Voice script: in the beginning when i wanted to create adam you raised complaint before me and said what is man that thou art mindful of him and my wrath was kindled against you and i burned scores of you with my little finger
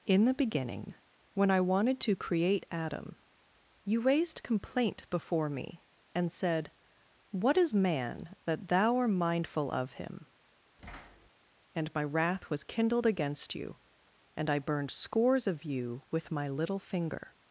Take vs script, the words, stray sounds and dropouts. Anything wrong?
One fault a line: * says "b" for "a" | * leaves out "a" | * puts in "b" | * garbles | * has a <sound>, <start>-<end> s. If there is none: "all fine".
* has a thud, 10.8-11.3 s